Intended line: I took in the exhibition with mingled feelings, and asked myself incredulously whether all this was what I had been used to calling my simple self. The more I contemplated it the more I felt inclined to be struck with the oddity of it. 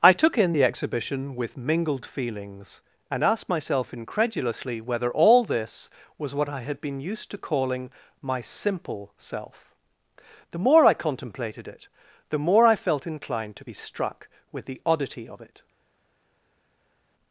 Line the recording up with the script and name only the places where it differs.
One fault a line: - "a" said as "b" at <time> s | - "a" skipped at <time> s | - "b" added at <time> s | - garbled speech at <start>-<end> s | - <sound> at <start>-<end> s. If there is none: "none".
none